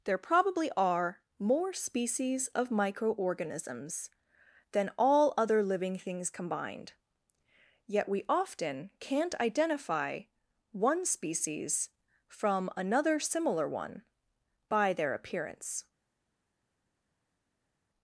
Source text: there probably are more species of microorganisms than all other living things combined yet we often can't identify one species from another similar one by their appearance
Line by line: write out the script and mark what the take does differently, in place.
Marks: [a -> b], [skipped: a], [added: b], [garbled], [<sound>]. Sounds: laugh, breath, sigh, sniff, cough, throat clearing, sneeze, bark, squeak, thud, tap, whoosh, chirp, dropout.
there probably are more species of microorganisms than all other living things combined yet we often can't identify one species from another similar one by their appearance